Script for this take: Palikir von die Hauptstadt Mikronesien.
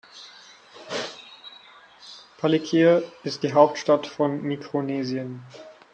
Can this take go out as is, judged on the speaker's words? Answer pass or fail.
fail